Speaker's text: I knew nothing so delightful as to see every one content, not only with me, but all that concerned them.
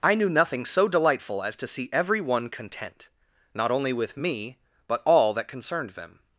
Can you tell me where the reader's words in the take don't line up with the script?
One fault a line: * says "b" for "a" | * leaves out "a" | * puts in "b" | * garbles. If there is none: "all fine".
all fine